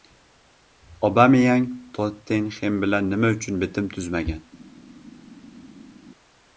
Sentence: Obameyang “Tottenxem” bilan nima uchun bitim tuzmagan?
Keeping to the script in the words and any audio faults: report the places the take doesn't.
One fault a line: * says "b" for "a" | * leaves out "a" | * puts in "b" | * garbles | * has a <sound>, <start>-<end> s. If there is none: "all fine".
all fine